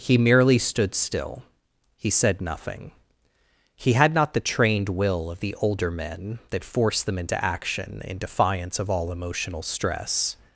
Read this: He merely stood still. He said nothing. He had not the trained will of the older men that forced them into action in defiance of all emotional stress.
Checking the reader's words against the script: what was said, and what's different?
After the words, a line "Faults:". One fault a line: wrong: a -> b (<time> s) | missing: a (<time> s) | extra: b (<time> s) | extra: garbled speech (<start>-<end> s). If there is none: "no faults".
He merely stood still. He said nothing. He had not the trained will of the older men that forced them into action in defiance of all emotional stress.
Faults:
no faults